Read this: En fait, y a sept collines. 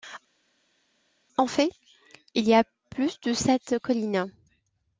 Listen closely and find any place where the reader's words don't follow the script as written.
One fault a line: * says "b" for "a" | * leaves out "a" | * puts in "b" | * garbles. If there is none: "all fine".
* puts in "il"
* puts in "plus de"